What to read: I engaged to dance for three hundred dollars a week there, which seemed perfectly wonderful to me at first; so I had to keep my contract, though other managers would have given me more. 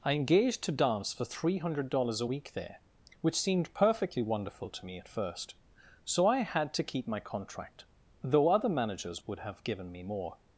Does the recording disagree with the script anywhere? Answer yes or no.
no